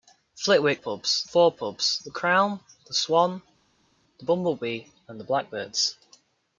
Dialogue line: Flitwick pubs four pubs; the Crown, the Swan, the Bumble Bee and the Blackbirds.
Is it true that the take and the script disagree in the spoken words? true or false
false